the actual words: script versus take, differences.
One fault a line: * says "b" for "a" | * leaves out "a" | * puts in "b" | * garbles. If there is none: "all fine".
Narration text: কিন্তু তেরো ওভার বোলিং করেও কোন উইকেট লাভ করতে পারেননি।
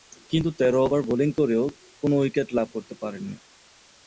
all fine